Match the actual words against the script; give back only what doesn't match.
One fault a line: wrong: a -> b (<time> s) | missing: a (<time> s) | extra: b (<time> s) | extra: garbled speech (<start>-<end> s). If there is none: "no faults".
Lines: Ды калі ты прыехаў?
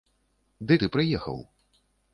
missing: калі (0.8 s)